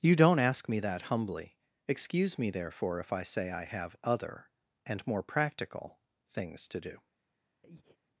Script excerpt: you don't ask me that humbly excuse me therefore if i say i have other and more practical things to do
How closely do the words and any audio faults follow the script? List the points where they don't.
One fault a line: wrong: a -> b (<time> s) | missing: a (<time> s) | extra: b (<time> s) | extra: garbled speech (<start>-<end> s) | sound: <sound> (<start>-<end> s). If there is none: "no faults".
sound: breath (7.6-8.0 s)